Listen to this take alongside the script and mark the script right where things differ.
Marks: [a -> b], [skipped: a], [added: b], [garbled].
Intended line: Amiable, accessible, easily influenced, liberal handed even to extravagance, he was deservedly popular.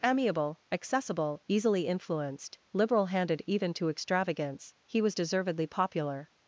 Amiable, accessible, easily influenced, liberal handed even to extravagance, he was deservedly popular.